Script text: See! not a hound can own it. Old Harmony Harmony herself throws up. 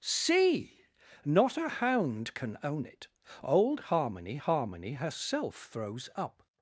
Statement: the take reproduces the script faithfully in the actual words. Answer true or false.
true